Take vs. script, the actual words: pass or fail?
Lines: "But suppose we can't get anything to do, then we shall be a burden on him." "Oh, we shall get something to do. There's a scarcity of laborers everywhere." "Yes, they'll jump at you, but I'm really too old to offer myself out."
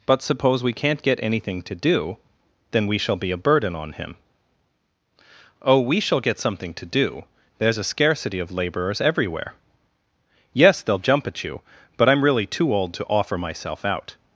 pass